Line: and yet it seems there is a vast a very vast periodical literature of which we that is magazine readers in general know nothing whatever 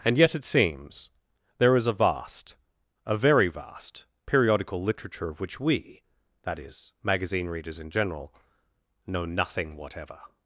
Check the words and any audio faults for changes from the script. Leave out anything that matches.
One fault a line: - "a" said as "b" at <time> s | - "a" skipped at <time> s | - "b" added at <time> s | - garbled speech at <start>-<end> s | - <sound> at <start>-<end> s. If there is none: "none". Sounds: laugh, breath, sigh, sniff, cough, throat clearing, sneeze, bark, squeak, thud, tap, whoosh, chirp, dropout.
none